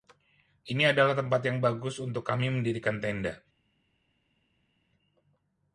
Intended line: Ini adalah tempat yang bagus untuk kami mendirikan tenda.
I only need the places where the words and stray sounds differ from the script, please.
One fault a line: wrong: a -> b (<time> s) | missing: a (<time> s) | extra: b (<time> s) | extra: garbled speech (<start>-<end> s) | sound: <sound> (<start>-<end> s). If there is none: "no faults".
no faults